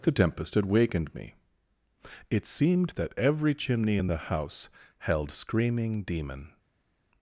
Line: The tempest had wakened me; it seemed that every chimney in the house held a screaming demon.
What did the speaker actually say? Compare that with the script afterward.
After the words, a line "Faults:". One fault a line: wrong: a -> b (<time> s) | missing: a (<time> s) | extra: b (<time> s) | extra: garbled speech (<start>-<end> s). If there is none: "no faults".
The tempest had wakened me; it seemed that every chimney in the house held screaming demon.
Faults:
missing: a (5.3 s)